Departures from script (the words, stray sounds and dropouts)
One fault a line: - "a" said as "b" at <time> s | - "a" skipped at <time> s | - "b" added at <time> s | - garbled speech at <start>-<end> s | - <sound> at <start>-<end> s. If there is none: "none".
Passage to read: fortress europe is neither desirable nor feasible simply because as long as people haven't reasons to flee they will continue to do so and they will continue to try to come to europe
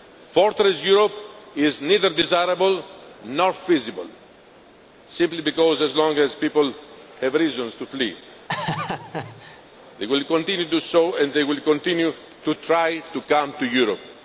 - "haven't" said as "have" at 7.2 s
- laugh at 8.5-9.6 s